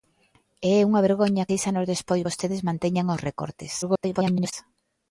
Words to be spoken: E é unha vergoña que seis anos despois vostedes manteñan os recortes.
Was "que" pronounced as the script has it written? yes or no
no